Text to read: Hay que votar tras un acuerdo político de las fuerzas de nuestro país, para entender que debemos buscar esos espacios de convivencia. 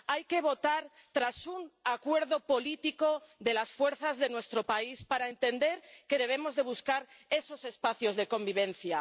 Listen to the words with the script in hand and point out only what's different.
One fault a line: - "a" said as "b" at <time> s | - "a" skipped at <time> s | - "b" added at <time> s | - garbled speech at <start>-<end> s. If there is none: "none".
none